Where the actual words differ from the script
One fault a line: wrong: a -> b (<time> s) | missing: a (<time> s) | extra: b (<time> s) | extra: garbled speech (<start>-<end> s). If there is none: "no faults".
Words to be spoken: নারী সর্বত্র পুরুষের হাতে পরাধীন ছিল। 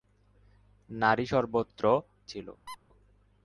missing: পুরুষের হাতে পরাধীন (1.8 s)